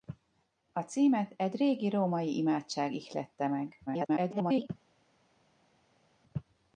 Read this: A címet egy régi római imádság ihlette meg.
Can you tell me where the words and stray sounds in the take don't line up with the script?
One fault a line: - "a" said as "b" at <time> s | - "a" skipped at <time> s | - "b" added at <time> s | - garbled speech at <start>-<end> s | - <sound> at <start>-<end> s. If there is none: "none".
- garbled speech at 3.9-4.7 s